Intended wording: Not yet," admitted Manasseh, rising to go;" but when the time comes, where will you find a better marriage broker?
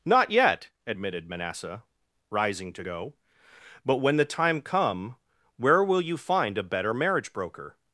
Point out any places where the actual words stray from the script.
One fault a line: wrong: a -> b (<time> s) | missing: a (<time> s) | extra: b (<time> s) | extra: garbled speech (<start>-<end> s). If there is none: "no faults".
wrong: comes -> come (4.6 s)